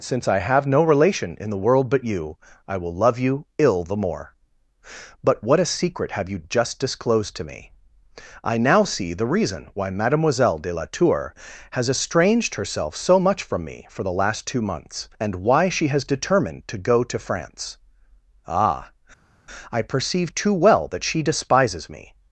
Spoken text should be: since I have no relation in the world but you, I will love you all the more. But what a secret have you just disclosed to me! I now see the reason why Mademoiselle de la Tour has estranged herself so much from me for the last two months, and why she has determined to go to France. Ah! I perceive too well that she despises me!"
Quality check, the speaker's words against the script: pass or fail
fail